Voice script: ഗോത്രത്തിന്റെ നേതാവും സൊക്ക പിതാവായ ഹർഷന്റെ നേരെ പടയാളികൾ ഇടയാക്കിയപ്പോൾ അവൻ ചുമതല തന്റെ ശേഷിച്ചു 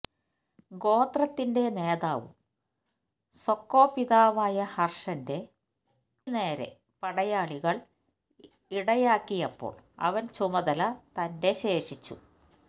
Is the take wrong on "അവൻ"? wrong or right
right